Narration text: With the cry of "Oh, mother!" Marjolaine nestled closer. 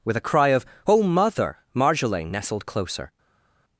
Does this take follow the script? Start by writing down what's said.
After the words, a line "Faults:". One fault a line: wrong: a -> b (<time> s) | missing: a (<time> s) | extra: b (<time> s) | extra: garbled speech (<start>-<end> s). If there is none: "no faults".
With a cry of "Oh, mother!" Marjolaine nestled closer.
Faults:
wrong: the -> a (0.2 s)